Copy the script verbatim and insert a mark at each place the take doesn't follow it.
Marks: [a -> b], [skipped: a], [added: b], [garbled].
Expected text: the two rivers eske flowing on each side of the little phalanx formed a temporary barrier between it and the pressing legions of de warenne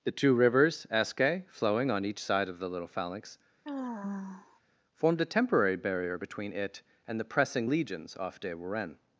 the two rivers eske flowing on each side of the little phalanx formed a temporary barrier between it and the pressing legions [of -> off] de warenne